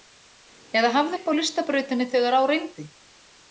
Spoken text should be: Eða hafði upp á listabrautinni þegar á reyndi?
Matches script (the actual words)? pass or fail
pass